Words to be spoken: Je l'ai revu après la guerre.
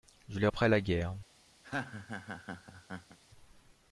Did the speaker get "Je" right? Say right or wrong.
right